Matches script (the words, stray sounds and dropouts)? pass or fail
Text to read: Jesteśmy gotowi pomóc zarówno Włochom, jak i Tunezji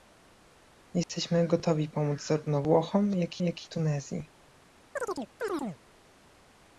fail